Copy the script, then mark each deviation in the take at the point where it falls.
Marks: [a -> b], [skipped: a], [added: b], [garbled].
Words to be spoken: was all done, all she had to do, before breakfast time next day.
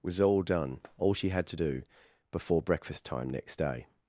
was all done, all she had to do, before breakfast time next day.